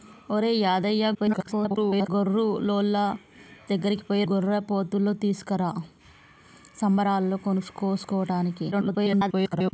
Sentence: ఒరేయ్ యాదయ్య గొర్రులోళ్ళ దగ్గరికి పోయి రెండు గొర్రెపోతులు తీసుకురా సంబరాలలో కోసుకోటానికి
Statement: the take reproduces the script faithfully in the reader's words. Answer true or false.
false